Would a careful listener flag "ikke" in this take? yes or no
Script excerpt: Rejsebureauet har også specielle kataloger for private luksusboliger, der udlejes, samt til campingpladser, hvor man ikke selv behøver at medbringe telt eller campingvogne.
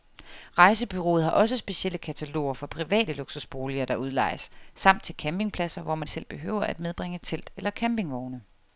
yes